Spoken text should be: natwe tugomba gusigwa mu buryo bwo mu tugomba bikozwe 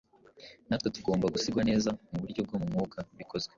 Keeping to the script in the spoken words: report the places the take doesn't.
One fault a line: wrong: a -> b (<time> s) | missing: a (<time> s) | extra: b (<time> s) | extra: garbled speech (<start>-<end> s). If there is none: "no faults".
extra: neza (1.7 s)
wrong: tugomba -> mwuka (2.7 s)